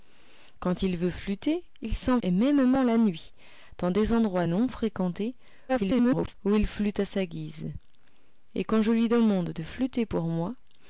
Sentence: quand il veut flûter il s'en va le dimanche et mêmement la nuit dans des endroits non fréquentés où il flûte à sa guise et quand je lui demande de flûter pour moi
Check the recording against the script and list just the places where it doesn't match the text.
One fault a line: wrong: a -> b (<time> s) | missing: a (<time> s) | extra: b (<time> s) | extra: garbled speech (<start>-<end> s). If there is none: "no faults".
missing: va le dimanche (2.2 s)
extra: garbled speech (5.7-6.3 s)